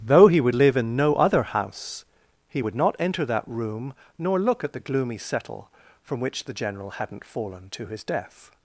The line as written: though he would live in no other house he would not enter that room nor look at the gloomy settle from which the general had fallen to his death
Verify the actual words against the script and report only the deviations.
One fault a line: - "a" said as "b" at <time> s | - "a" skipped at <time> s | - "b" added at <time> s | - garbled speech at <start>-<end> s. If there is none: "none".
- "had" said as "hadn't" at 6.9 s